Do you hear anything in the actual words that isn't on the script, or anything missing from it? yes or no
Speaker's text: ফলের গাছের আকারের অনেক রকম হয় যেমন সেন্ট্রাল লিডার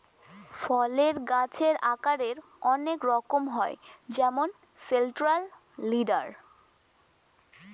no